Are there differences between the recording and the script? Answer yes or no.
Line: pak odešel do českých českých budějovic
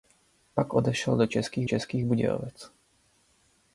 no